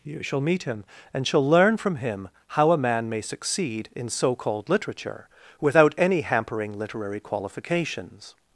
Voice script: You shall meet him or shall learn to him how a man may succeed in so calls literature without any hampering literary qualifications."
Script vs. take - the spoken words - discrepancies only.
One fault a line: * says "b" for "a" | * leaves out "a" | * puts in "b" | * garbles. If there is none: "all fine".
* says "and" for "or"
* says "from" for "to"
* says "called" for "calls"